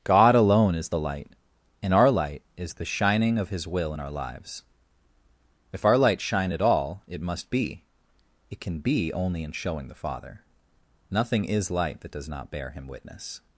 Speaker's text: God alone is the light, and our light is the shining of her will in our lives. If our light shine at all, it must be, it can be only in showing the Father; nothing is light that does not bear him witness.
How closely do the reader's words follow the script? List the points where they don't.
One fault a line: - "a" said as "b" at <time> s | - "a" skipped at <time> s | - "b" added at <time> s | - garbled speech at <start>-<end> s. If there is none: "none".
- "her" said as "his" at 3.5 s